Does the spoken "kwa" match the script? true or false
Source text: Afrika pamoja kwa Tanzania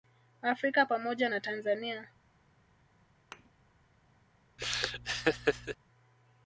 false